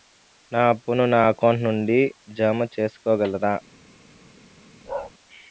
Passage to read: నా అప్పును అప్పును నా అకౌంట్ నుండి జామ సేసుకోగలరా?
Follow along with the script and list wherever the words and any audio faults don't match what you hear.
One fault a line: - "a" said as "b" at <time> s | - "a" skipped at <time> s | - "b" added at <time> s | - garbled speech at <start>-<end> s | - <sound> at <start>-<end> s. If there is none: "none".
- "అప్పును" skipped at 1.0 s
- bark at 4.9-5.1 s